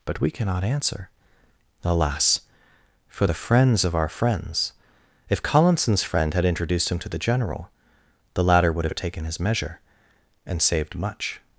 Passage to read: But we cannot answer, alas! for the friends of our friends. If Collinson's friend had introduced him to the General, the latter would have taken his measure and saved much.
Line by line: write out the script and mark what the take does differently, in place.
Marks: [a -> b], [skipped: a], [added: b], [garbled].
But we cannot answer, alas! for the friends of our friends. If Collinson's friend had introduced him to the General, the latter would have taken his measure and saved much.